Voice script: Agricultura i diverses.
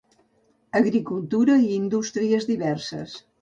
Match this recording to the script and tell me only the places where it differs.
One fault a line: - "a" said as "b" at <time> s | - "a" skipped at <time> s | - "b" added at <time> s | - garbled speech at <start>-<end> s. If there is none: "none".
- "indústries" added at 1.8 s